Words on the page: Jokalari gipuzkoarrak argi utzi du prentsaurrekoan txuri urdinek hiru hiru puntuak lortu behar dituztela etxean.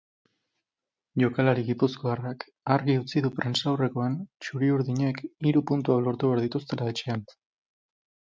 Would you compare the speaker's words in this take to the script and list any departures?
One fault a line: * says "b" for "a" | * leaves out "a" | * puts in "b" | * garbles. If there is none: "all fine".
* leaves out "hiru"